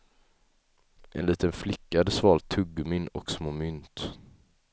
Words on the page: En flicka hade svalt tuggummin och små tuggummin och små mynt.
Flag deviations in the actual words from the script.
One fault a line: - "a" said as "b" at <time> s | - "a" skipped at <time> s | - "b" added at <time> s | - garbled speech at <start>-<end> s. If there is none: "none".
- "liten" added at 1.2 s
- "tuggummin och små" skipped at 3.5 s